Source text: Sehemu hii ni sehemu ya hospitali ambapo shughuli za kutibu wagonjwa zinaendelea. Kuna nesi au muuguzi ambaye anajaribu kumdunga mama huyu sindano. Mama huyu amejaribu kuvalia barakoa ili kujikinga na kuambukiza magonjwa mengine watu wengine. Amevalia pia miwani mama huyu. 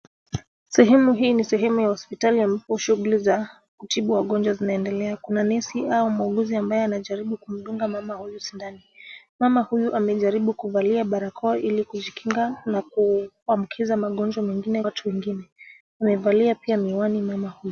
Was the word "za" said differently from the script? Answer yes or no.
no